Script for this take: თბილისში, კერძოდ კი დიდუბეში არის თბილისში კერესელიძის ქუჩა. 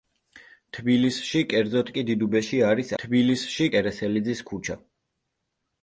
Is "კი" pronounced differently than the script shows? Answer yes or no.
no